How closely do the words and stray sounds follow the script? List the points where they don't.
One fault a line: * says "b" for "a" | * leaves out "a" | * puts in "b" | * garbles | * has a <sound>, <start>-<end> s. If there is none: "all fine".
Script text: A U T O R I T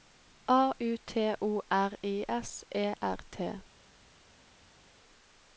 * puts in "S E R"